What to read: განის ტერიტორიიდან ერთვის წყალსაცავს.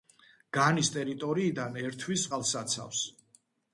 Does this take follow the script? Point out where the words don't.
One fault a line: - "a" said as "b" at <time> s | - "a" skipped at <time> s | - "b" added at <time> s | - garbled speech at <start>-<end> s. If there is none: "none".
none